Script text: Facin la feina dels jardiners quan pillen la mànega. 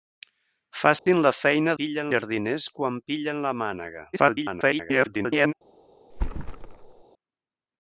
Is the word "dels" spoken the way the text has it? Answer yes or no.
no